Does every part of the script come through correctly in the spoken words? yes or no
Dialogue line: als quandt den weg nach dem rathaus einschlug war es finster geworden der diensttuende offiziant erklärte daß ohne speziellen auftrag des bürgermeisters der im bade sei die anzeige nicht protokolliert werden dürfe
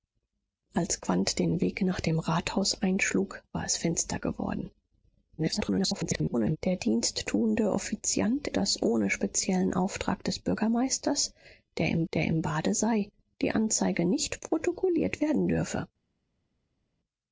no